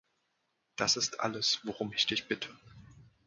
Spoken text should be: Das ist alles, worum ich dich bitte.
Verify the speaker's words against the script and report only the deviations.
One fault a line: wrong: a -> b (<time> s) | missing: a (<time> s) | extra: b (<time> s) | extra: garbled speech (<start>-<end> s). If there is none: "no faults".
no faults